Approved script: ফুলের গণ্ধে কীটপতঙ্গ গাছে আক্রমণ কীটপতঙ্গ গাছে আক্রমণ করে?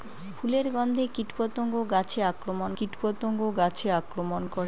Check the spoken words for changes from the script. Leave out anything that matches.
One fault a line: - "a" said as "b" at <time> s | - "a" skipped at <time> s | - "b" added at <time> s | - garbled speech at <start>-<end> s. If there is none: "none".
none